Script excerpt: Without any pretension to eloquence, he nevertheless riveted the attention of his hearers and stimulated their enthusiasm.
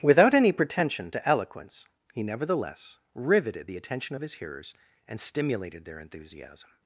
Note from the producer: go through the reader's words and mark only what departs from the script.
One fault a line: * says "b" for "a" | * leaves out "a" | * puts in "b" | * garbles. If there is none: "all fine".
all fine